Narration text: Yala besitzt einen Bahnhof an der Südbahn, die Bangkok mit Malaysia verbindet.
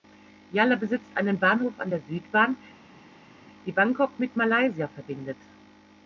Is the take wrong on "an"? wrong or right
right